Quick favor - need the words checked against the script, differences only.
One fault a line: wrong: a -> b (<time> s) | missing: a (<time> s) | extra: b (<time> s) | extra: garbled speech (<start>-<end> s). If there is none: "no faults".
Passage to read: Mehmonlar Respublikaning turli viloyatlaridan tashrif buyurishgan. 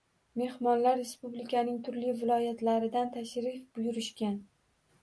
no faults